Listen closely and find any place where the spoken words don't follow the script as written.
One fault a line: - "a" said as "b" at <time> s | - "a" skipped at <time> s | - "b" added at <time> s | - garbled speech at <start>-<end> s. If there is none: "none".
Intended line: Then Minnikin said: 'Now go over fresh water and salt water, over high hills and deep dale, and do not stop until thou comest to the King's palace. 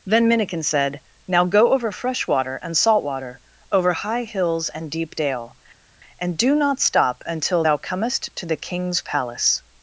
none